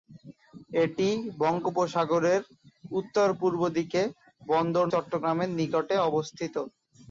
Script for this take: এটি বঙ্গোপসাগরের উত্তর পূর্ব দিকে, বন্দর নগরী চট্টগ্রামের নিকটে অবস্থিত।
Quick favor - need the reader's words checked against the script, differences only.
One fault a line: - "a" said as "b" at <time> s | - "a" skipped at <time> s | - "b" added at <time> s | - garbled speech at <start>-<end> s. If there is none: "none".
- "নগরী" skipped at 4.8 s